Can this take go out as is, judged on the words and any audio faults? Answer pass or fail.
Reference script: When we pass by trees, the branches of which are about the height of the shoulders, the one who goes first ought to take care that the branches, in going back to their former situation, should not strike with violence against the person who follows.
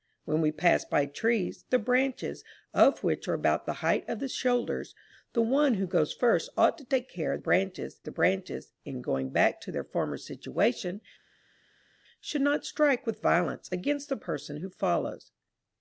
fail